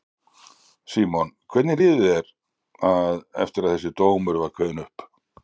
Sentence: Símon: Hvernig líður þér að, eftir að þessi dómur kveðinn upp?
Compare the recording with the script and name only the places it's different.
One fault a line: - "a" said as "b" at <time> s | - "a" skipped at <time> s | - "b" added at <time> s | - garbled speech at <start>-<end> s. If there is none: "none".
- "var" added at 4.4 s